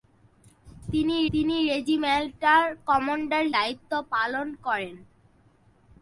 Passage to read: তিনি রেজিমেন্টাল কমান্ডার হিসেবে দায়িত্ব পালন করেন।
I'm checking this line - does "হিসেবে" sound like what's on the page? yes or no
no